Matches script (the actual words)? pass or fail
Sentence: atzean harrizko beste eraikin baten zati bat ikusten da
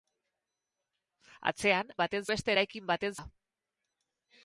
fail